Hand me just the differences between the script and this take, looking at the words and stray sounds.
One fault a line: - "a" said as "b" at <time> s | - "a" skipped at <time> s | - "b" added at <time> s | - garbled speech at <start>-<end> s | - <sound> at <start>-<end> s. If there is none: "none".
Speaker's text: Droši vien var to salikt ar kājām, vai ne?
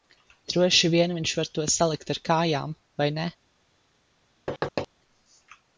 - "viņš" added at 1.2 s
- thud at 4.5-4.9 s